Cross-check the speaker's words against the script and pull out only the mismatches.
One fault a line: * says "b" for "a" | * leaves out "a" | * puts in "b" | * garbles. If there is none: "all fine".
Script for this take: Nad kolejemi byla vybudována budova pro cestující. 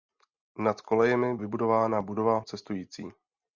* leaves out "byla"
* leaves out "pro"